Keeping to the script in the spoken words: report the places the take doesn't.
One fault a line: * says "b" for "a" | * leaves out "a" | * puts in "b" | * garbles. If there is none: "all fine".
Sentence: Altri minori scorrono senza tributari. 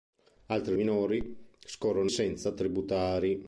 all fine